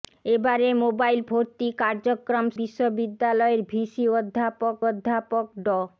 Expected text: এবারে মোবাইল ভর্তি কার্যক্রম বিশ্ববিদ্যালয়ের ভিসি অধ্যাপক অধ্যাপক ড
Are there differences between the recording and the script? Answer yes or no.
no